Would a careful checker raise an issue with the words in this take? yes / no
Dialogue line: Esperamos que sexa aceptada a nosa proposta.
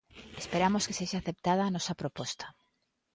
no